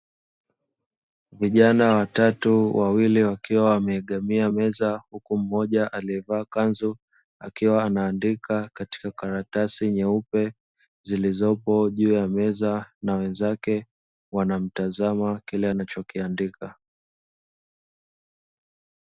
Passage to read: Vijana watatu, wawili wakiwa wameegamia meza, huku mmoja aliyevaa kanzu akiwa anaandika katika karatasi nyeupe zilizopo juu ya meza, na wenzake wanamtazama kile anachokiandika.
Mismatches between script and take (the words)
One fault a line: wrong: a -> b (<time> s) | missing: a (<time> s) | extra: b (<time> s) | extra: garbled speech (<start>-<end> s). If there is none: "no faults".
no faults